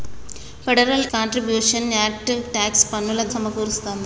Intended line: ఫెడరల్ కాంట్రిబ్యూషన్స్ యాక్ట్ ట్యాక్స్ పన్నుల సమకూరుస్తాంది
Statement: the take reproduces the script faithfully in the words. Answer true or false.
true